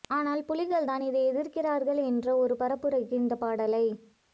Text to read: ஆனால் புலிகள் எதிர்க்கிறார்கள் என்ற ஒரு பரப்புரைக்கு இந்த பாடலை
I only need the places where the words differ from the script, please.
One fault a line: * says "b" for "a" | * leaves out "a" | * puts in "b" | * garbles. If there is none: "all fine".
* puts in "தான் இதை"